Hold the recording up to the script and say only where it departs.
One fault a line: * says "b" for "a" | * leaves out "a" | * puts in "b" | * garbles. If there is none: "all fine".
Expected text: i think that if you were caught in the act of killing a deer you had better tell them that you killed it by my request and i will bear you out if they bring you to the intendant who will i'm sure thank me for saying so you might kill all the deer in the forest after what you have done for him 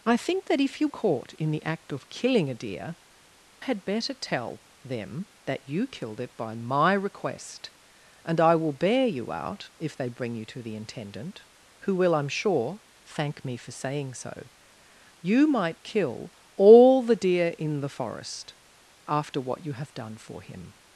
* leaves out "were"
* leaves out "you"